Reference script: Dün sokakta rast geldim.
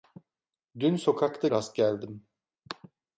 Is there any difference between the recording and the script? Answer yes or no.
no